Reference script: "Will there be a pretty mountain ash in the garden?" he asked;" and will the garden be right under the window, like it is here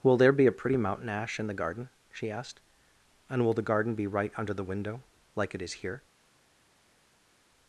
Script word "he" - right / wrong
wrong